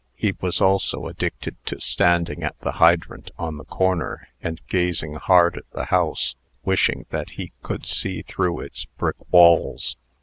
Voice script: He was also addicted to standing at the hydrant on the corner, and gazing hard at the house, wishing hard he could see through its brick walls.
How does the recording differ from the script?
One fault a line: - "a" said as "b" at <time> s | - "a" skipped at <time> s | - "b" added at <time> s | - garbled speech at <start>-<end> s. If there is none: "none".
- "hard" said as "that" at 7.1 s